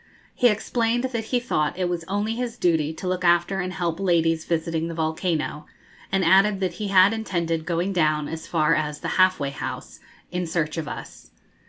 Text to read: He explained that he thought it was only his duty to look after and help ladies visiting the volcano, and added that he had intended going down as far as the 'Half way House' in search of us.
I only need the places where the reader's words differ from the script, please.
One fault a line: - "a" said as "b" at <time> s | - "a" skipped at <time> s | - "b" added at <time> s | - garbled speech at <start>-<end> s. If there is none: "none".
none